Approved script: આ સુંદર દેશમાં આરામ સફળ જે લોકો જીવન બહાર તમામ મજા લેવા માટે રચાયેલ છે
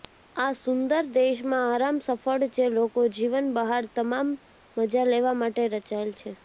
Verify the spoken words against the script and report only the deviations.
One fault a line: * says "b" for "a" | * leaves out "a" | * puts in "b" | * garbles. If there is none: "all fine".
all fine